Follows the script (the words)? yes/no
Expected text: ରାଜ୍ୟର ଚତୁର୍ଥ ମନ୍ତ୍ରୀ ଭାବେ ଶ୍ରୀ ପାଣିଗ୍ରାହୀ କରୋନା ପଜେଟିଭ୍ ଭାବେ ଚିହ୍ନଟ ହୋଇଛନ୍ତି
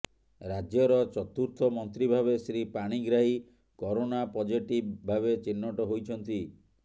yes